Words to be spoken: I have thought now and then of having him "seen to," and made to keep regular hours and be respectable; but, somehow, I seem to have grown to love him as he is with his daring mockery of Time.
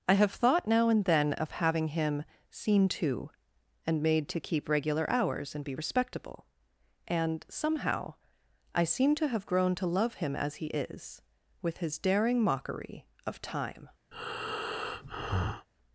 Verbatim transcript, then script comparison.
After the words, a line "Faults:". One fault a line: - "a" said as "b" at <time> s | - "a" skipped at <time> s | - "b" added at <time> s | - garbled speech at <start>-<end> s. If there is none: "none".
I have thought now and then of having him "seen to," and made to keep regular hours and be respectable; and, somehow, I seem to have grown to love him as he is with his daring mockery of Time.
Faults:
- "but" said as "and" at 7.1 s